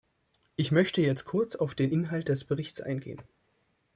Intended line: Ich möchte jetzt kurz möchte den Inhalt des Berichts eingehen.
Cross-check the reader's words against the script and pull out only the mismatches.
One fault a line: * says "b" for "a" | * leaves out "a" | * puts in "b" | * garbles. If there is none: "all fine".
* says "auf" for "möchte"